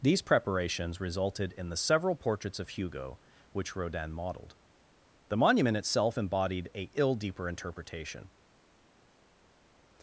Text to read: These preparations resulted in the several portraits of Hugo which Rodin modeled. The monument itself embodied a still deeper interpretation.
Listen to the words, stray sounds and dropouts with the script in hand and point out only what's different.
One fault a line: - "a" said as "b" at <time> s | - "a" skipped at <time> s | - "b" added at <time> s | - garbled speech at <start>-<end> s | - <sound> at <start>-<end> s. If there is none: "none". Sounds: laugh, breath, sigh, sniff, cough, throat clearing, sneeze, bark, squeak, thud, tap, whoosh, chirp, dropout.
- "still" said as "ill" at 6.9 s